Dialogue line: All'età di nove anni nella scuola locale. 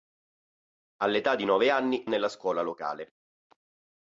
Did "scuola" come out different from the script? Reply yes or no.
no